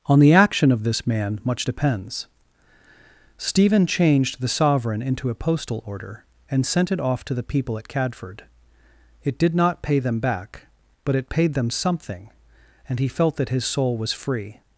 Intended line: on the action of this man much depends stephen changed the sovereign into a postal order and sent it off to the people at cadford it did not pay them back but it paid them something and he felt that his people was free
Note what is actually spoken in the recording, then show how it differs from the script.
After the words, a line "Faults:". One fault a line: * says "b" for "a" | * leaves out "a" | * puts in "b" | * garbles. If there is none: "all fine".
on the action of this man much depends stephen changed the sovereign into a postal order and sent it off to the people at cadford it did not pay them back but it paid them something and he felt that his soul was free
Faults:
* says "soul" for "people"